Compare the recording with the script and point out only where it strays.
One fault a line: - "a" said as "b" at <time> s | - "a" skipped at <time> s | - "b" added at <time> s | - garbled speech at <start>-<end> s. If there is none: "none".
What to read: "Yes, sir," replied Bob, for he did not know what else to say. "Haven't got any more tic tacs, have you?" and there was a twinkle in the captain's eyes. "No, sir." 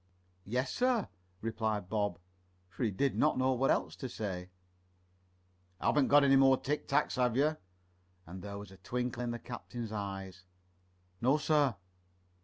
none